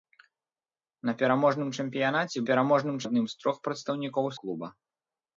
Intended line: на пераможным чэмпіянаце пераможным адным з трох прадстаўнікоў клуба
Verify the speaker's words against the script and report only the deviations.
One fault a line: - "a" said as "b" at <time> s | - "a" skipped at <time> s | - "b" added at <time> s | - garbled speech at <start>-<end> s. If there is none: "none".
none